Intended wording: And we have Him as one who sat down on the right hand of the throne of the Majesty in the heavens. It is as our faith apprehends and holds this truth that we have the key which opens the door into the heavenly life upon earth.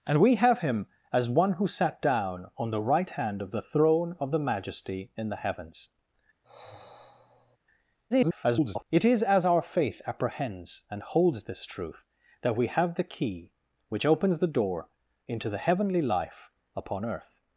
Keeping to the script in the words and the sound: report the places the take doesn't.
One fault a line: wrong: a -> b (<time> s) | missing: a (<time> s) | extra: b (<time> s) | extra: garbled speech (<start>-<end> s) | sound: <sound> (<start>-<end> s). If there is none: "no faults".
sound: sigh (6.4-7.6 s)
extra: garbled speech (8.1-8.8 s)